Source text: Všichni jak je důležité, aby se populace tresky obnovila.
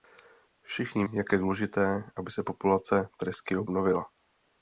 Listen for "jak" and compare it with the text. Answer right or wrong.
right